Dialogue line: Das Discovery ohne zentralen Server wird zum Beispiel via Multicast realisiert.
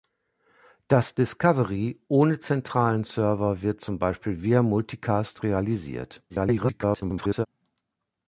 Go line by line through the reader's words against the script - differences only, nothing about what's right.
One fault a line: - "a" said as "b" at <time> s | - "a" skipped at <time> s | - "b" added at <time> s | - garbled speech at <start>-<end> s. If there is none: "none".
- garbled speech at 6.3-7.5 s